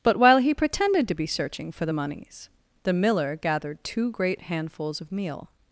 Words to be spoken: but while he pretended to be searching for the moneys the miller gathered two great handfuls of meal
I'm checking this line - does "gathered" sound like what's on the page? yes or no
yes